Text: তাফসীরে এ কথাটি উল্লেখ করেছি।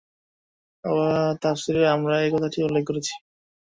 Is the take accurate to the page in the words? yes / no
no